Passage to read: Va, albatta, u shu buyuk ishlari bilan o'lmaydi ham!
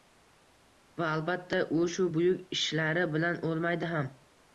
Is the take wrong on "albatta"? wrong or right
right